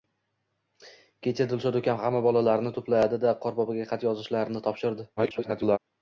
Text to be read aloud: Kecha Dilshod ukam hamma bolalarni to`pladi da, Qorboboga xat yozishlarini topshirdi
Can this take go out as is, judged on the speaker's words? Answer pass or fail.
fail